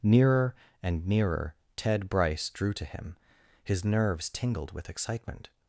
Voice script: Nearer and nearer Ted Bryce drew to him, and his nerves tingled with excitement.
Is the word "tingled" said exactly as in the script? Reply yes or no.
yes